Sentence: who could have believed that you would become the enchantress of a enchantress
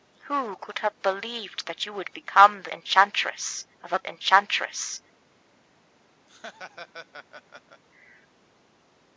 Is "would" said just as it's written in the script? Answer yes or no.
yes